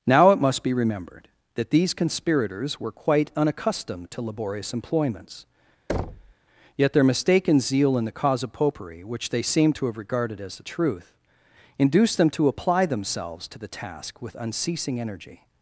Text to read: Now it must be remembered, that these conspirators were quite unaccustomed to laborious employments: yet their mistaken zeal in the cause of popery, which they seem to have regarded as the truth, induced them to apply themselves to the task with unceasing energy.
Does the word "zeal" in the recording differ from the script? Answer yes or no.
no